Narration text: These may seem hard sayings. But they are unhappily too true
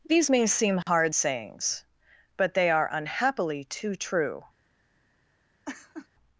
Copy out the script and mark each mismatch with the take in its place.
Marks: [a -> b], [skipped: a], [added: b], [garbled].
These may seem hard sayings. But they are unhappily too true